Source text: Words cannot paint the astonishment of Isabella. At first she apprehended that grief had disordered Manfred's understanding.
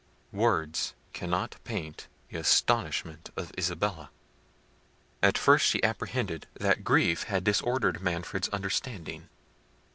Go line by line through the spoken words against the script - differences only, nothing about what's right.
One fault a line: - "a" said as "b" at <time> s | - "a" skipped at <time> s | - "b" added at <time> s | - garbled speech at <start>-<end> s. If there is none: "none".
none